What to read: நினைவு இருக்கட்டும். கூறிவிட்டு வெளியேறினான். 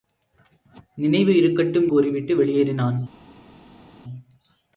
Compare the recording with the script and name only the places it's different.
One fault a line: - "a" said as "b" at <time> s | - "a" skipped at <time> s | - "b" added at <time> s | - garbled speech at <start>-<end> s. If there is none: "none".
none